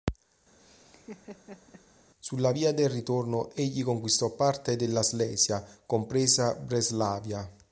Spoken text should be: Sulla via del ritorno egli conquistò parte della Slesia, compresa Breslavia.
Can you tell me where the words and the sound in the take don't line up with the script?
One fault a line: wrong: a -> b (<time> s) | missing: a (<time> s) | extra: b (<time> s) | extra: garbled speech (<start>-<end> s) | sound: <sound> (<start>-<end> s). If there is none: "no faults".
sound: laugh (0.6-1.9 s)